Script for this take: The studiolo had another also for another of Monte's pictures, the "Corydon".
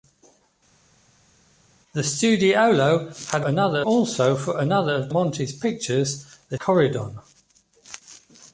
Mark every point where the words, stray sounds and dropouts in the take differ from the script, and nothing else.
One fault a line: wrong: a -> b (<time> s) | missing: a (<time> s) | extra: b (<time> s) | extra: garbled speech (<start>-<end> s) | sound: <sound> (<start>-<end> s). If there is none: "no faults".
no faults